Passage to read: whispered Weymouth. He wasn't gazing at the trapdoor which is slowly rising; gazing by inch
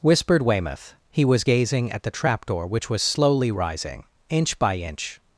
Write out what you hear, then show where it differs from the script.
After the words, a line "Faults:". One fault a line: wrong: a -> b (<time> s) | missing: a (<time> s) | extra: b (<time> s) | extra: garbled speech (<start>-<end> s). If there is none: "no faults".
whispered Weymouth. He was gazing at the trapdoor which was slowly rising; inch by inch
Faults:
wrong: wasn't -> was (1.2 s)
wrong: is -> was (2.9 s)
wrong: gazing -> inch (4.3 s)